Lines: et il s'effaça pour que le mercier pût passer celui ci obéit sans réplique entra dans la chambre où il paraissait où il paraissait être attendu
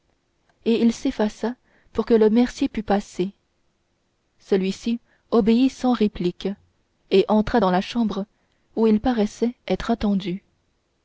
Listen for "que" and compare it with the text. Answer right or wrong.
right